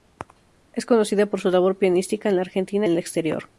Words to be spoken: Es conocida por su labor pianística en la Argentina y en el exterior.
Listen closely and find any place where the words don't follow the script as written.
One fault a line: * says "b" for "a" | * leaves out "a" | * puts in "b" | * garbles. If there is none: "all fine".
* leaves out "y"